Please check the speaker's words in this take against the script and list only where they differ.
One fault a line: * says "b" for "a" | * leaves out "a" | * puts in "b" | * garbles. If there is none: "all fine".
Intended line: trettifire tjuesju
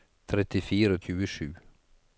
all fine